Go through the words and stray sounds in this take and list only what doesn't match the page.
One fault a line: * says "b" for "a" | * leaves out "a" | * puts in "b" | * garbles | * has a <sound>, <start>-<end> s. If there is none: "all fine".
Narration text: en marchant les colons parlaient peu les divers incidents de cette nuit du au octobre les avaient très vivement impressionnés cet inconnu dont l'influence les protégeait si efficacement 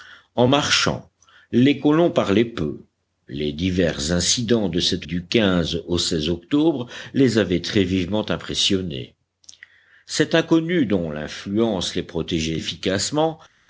* leaves out "nuit"
* leaves out "si"